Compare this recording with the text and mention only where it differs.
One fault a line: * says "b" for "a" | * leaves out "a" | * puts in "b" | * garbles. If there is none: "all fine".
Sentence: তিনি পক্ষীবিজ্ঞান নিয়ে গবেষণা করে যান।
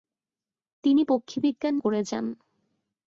* leaves out "নিয়ে গবেষণা"